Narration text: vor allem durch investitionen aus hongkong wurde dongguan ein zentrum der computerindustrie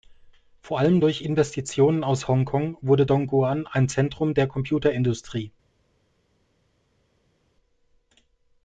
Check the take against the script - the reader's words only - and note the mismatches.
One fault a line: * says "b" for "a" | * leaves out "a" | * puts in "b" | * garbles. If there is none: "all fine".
all fine